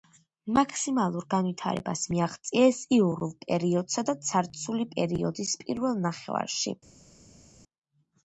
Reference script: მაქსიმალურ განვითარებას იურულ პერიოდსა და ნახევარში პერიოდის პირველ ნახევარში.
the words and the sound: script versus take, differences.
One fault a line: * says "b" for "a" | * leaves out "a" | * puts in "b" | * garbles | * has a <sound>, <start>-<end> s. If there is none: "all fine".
* puts in "მიაღწიეს"
* says "ცარცული" for "ნახევარში"